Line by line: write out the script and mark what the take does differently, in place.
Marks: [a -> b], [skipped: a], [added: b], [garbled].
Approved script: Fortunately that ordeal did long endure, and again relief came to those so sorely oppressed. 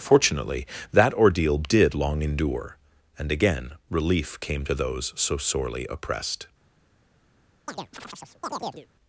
Fortunately that ordeal did long endure, and again relief came to those so sorely oppressed.